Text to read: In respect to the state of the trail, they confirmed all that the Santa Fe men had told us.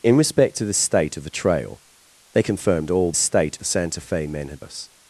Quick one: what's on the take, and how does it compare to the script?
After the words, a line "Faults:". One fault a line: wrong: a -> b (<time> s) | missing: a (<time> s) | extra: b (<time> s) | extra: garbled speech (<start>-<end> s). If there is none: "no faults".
In respect to the state of the trail, they confirmed all state the Santa Fe men had us.
Faults:
wrong: that -> state (3.1 s)
missing: told (4.6 s)